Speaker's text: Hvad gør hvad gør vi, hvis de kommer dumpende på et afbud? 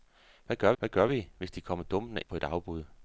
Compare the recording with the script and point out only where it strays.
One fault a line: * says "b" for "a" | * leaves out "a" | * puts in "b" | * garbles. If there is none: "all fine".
all fine